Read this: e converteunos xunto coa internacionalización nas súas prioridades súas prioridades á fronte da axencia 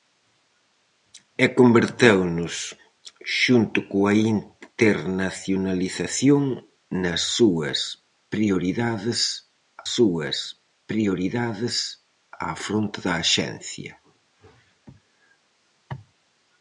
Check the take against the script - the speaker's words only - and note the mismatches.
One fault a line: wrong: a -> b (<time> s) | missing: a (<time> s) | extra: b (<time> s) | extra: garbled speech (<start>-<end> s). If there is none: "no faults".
no faults